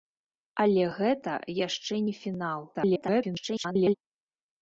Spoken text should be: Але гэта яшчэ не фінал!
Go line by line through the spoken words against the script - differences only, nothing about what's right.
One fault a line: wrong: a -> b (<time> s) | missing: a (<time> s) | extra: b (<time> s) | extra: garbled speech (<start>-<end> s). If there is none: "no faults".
extra: garbled speech (2.7-3.9 s)